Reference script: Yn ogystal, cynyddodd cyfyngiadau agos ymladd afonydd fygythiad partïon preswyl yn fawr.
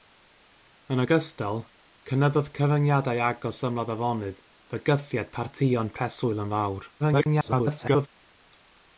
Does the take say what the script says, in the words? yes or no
no